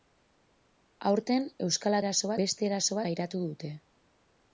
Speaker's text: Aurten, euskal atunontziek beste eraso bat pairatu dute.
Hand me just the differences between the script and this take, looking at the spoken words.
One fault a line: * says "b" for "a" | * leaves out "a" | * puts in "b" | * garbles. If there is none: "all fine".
* says "eraso" for "atunontziek"
* leaves out "bat"